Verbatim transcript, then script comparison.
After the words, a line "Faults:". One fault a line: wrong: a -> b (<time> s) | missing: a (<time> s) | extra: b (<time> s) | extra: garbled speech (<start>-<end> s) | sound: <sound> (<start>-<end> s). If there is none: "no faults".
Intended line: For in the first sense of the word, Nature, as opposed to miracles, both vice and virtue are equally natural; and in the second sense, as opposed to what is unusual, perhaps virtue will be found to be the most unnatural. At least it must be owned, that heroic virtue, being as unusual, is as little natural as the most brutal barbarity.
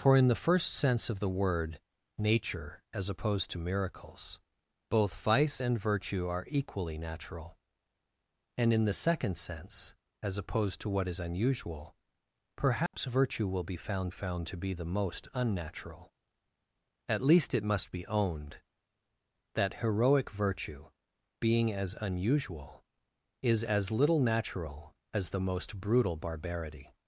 For in the first sense of the word, Nature, as opposed to miracles, both vice and virtue are equally natural; and in the second sense, as opposed to what is unusual, perhaps virtue will be found found to be the most unnatural. At least it must be owned, that heroic virtue, being as unusual, is as little natural as the most brutal barbarity.
Faults:
sound: dropout (12.9-12.9 s)
extra: found (14.1 s)